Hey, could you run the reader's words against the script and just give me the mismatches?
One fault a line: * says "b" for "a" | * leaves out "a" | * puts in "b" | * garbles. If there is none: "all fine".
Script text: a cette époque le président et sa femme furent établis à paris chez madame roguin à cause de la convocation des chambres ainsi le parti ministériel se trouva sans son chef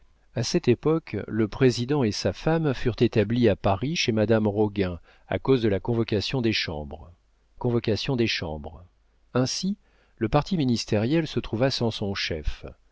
* puts in "convocation des chambres"